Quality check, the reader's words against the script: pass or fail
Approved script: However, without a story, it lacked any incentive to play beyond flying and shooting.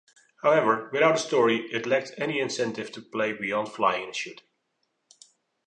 pass